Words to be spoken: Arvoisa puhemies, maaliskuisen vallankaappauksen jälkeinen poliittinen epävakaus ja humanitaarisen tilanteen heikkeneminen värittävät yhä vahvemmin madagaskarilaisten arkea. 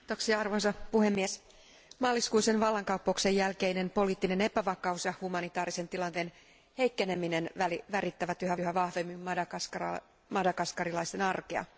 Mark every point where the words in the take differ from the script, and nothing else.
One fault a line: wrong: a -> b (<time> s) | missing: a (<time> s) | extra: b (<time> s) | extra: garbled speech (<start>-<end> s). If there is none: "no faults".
extra: yhä (8.6 s)